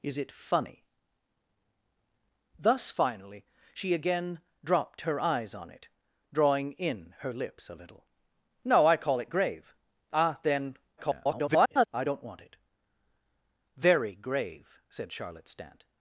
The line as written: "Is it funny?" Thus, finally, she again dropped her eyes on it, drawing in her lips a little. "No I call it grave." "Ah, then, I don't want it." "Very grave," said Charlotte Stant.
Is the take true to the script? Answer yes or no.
no